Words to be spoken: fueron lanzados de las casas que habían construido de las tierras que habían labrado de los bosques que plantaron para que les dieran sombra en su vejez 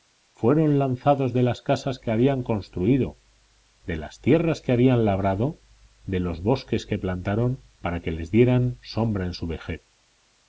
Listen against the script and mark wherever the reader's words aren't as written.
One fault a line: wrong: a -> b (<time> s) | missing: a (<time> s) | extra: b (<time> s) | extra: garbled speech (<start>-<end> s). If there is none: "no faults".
no faults